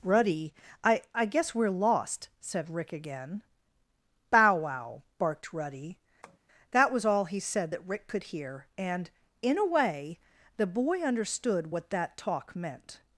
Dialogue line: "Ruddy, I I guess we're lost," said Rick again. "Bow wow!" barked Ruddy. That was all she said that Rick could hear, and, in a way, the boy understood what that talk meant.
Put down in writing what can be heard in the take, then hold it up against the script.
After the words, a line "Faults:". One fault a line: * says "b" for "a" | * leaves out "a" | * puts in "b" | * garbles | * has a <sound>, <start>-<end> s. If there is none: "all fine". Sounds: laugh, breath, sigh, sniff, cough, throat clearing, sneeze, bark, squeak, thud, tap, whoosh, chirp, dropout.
"Ruddy, I I guess we're lost," said Rick again. "Bow wow!" barked Ruddy. That was all he said that Rick could hear, and, in a way, the boy understood what that talk meant.
Faults:
* has a tap, 6.2-6.4 s
* says "he" for "she"